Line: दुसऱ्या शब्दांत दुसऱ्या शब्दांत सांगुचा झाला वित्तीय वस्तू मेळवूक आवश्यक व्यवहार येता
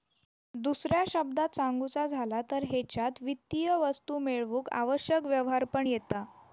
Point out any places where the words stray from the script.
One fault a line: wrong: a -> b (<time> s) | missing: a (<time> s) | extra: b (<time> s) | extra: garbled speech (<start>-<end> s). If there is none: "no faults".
wrong: दुसऱ्या शब्दांत सांगुचा झाला -> सांगुचा झाला तर हेच्यात (1.5 s)
extra: पण (5.7 s)